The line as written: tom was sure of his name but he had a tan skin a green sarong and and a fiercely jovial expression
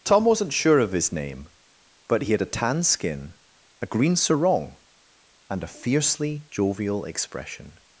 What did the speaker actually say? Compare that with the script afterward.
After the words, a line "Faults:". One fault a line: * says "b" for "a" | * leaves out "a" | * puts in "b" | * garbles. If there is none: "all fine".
tom wasn't sure of his name but he had a tan skin a green sarong and a fiercely jovial expression
Faults:
* says "wasn't" for "was"
* leaves out "and"